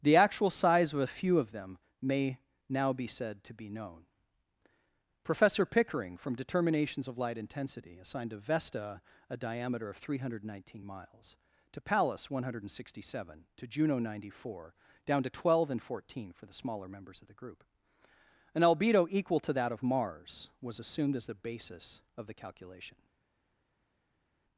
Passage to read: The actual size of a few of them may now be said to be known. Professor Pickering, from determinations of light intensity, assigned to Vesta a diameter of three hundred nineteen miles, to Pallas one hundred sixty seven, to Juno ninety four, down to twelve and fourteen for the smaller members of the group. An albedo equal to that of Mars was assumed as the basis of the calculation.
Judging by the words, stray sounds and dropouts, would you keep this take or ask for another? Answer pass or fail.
pass